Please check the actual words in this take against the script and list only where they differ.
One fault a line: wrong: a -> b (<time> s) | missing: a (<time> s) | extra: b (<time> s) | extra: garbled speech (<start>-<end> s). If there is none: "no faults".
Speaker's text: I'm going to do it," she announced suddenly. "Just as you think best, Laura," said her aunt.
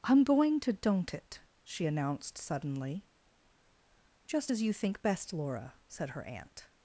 wrong: do -> don't (0.7 s)